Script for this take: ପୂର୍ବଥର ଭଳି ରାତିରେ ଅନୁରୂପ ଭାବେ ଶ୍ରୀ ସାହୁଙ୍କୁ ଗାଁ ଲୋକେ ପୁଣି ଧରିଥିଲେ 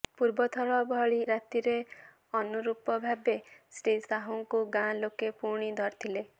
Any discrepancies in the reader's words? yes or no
no